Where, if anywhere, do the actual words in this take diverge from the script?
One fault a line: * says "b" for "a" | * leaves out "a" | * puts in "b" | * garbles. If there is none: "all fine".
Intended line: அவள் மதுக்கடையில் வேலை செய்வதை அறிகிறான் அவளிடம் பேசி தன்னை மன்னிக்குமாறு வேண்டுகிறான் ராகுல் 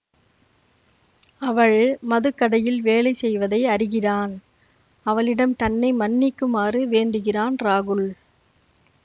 * leaves out "பேசி"